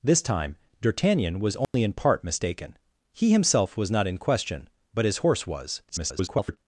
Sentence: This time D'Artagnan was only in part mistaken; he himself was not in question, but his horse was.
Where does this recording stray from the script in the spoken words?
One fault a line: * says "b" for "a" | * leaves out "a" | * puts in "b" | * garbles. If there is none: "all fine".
* garbles